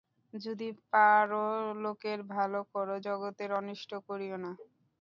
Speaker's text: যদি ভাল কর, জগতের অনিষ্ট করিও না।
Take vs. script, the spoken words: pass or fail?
fail